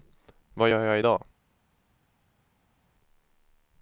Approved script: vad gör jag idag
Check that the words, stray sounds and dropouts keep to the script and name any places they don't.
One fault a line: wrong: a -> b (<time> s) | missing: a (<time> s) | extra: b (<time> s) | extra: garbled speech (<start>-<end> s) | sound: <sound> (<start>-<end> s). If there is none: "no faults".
no faults